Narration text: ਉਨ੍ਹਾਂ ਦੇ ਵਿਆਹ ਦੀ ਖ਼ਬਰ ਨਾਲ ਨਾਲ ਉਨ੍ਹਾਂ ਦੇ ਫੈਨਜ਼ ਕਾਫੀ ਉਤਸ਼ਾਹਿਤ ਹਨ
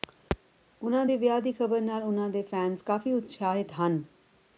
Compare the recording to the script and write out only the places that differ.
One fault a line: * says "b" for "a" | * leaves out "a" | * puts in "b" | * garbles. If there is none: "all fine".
* leaves out "ਨਾਲ"